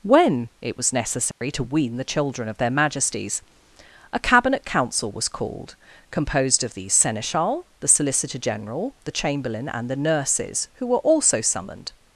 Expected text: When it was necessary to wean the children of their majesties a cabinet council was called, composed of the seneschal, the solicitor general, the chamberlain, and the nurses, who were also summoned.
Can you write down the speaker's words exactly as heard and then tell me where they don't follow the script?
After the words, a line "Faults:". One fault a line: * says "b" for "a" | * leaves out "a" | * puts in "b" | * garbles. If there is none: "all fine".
When it was necessary to wean the children of their majesties a cabinet council was called, composed of the seneschal, the solicitor general, the chamberlain, and the nurses, who were also summoned.
Faults:
all fine